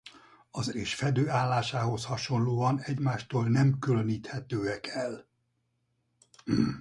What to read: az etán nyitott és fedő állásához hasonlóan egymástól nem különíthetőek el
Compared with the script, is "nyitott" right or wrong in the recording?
wrong